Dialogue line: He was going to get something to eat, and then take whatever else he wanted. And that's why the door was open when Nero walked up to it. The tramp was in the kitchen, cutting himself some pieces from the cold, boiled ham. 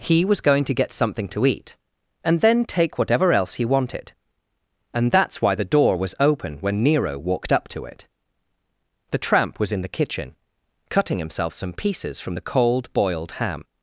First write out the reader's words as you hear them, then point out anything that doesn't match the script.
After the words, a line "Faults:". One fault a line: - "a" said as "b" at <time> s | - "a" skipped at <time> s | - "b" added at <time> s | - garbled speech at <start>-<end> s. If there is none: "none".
He was going to get something to eat, and then take whatever else he wanted. And that's why the door was open when Nero walked up to it. The tramp was in the kitchen, cutting himself some pieces from the cold, boiled ham.
Faults:
none